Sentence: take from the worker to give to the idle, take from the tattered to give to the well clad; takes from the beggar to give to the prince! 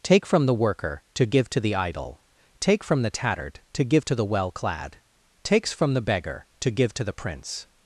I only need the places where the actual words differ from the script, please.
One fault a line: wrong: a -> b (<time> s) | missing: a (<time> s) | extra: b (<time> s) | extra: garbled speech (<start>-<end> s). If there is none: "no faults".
no faults